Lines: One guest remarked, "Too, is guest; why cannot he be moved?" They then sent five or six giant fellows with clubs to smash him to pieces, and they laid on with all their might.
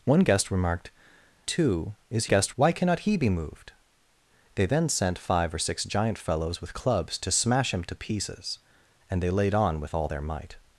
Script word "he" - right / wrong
right